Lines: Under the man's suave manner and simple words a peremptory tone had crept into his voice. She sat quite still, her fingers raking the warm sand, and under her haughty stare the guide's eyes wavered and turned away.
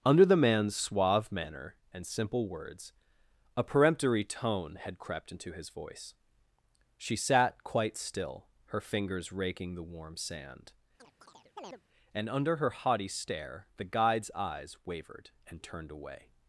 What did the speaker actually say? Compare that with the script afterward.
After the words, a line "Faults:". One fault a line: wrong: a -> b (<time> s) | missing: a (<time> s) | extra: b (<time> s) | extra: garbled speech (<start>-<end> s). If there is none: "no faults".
Under the man's suave manner and simple words a peremptory tone had crept into his voice. She sat quite still, her fingers raking the warm sand, and under her haughty stare the guide's eyes wavered and turned away.
Faults:
no faults